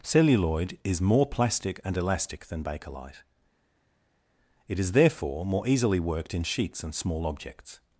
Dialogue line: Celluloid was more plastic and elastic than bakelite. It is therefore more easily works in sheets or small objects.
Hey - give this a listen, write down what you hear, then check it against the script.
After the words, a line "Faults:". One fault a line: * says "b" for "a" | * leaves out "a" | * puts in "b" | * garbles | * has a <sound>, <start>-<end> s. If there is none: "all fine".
Celluloid is more plastic and elastic than bakelite. It is therefore more easily worked in sheets and small objects.
Faults:
* says "is" for "was"
* says "worked" for "works"
* says "and" for "or"